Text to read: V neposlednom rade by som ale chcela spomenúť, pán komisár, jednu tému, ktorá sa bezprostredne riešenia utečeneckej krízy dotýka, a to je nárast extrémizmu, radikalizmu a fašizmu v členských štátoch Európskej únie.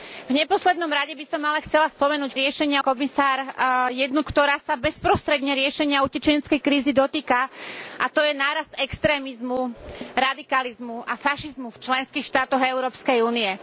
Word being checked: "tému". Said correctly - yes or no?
no